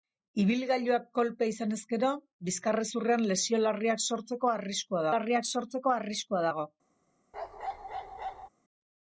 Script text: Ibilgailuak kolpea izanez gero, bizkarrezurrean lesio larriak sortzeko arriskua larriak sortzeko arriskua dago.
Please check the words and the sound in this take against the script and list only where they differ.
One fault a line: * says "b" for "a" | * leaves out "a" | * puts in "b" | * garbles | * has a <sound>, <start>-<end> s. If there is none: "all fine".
* has a bark, 7.3-8.5 s